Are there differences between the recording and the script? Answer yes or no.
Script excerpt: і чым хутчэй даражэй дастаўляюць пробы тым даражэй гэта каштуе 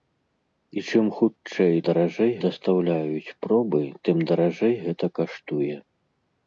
no